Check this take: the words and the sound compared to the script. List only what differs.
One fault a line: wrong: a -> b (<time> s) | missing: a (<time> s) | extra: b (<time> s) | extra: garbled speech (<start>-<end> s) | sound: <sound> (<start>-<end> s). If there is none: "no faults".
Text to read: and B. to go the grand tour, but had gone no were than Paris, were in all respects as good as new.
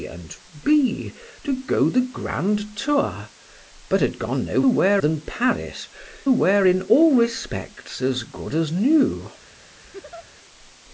sound: laugh (9.8-10.3 s)